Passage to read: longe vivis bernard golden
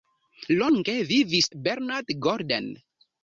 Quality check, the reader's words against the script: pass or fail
pass